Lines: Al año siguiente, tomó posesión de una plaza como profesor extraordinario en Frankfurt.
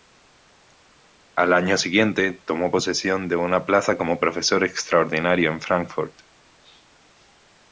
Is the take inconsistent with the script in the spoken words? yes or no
no